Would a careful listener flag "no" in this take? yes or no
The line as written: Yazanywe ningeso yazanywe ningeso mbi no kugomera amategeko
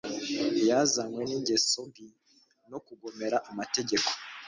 no